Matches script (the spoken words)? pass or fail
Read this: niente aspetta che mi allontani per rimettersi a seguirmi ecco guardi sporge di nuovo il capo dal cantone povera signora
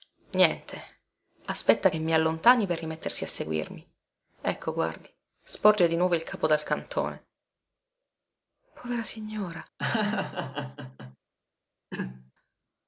pass